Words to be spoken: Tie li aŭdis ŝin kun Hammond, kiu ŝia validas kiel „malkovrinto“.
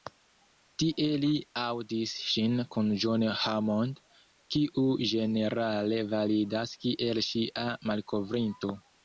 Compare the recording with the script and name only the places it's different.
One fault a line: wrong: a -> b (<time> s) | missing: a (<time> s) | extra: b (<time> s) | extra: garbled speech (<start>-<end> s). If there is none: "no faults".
extra: John (3.0 s)
wrong: ŝia -> ĝenerale (5.1 s)
extra: ŝia (7.3 s)